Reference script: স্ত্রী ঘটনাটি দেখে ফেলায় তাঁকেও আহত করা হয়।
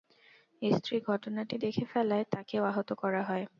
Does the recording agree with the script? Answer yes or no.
yes